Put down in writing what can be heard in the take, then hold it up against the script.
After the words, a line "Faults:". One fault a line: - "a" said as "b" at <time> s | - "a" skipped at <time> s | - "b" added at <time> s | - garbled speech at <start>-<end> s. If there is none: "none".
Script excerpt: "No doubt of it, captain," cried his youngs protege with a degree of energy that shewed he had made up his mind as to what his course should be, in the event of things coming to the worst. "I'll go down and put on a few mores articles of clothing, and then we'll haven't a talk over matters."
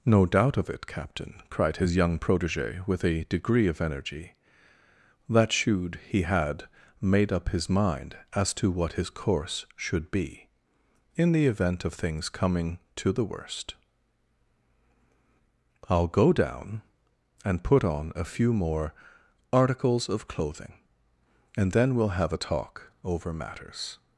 "No doubt of it, captain," cried his young protege with a degree of energy that shewed he had made up his mind as to what his course should be, in the event of things coming to the worst. "I'll go down and put on a few more articles of clothing, and then we'll have a talk over matters."
Faults:
- "youngs" said as "young" at 1.9 s
- "mores" said as "more" at 18.5 s
- "haven't" said as "have" at 22.2 s